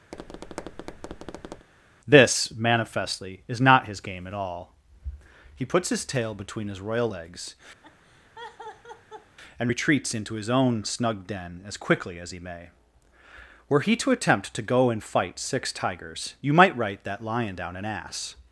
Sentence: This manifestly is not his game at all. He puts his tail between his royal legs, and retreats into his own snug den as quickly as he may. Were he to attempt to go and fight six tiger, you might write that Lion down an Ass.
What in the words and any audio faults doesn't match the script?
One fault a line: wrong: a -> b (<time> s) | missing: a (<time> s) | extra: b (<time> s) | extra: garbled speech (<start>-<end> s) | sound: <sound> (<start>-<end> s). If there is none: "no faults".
sound: tap (0.1-1.7 s)
sound: laugh (7.8-9.4 s)
wrong: tiger -> tigers (15.7 s)